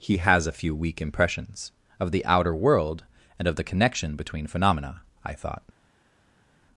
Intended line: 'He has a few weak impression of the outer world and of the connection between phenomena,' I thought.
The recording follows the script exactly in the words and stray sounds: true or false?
false